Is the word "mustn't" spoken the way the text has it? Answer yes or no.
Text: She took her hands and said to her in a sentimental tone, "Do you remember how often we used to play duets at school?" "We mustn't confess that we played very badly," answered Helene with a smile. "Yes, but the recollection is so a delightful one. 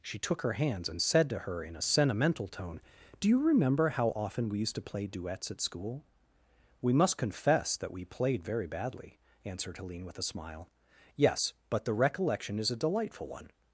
no